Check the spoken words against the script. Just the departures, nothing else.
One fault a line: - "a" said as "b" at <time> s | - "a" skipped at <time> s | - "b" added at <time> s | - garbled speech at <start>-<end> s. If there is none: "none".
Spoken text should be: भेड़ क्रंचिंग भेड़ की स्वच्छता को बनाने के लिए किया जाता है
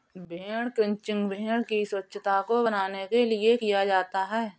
none